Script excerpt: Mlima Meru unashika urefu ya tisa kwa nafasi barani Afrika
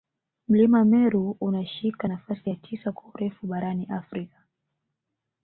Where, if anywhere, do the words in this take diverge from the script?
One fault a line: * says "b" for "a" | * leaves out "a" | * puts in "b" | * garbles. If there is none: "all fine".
* says "nafasi" for "urefu"
* says "urefu" for "nafasi"